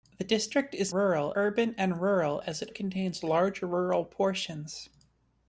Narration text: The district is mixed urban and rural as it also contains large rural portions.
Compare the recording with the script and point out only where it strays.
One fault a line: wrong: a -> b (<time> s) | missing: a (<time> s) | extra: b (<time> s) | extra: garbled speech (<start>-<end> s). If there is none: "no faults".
wrong: mixed -> rural (0.9 s)
missing: also (2.7 s)